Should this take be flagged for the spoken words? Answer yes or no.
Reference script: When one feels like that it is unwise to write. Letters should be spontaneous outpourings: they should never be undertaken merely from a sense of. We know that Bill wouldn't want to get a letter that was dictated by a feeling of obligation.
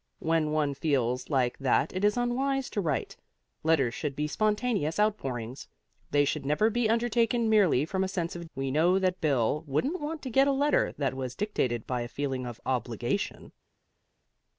no